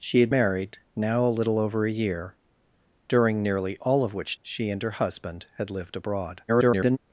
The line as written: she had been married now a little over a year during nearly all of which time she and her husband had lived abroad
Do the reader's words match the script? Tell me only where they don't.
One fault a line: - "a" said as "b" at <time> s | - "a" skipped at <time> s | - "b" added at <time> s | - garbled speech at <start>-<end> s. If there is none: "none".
- "been" skipped at 0.3 s
- "time" skipped at 4.4 s
- garbled speech at 6.5-7.0 s